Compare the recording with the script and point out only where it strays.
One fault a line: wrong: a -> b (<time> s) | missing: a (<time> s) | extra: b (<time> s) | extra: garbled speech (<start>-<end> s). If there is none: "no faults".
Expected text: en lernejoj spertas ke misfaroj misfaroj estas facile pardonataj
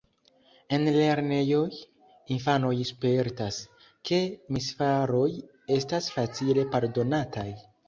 extra: infanoj (2.4 s)
missing: misfaroj (5.3 s)